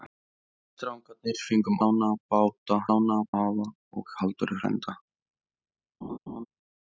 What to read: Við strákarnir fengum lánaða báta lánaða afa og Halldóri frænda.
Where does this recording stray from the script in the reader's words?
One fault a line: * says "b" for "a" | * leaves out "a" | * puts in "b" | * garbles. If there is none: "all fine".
all fine